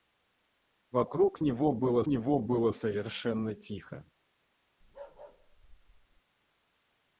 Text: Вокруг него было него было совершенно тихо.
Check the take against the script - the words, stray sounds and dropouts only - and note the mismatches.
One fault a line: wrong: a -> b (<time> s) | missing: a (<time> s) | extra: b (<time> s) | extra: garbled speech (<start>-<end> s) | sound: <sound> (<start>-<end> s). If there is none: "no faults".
sound: bark (4.8-6.2 s)